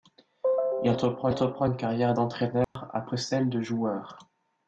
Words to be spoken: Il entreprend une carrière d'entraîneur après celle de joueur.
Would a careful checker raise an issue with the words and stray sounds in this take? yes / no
yes